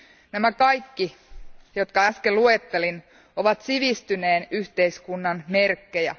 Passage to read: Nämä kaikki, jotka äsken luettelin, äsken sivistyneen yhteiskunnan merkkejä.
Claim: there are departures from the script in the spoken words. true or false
true